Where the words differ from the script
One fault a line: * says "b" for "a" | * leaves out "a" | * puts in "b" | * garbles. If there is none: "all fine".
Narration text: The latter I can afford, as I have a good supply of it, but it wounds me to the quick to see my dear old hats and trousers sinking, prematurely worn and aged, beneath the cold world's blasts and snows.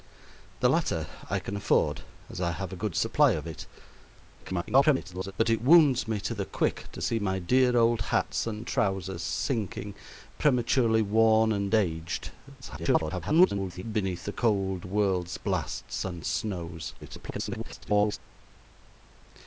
* garbles
* garbles
* garbles